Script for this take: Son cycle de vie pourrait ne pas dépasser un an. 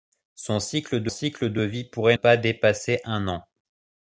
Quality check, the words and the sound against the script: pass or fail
fail